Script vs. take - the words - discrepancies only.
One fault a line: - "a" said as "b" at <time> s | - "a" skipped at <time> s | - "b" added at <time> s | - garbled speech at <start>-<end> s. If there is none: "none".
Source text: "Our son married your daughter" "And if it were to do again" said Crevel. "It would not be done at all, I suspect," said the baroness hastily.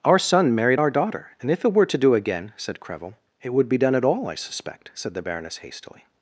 - "your" said as "our" at 0.8 s
- "not" skipped at 3.7 s